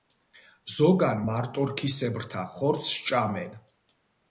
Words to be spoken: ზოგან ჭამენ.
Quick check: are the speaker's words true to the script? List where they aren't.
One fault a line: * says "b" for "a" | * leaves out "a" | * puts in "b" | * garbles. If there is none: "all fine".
* puts in "მარტორქისებრთა ხორცს"